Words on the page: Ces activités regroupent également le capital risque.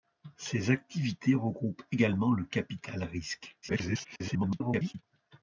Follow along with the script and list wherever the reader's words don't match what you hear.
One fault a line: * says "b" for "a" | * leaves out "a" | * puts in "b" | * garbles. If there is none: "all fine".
* garbles